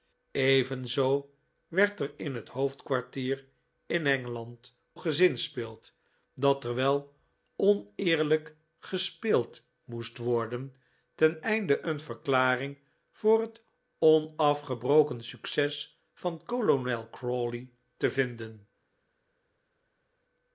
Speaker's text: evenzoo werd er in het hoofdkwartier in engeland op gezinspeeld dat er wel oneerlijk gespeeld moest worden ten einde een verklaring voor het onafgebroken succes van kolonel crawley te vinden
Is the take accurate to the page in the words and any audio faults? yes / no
no